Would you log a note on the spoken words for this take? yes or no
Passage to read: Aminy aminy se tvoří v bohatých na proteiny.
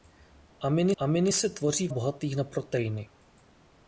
no